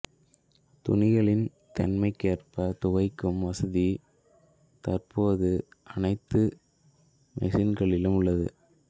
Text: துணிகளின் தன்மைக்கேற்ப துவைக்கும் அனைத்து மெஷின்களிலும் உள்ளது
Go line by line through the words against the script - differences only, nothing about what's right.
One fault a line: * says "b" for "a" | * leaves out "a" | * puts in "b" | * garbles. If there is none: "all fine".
* puts in "வசதி தற்போது"